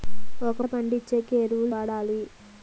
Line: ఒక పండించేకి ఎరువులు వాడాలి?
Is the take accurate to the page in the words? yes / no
yes